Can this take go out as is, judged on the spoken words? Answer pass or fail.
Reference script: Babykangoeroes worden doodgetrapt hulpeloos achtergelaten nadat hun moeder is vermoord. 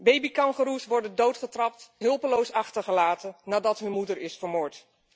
pass